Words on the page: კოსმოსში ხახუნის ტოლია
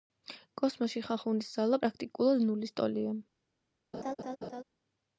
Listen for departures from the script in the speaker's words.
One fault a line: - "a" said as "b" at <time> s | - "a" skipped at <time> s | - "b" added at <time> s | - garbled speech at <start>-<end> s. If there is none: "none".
- "ძალა პრაქტიკულად ნულის" added at 1.6 s